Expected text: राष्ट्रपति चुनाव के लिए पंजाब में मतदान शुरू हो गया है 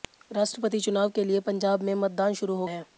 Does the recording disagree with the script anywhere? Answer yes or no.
yes